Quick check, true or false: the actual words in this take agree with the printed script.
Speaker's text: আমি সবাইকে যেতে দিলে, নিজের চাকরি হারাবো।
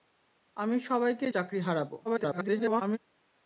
false